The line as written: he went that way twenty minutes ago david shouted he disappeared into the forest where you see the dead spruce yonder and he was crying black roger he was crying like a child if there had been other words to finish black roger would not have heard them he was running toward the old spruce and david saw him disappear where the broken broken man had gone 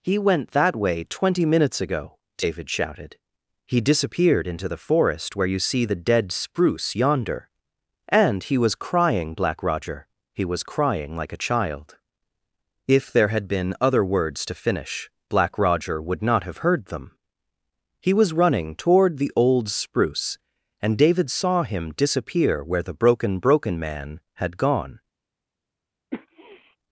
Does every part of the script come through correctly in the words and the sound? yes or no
no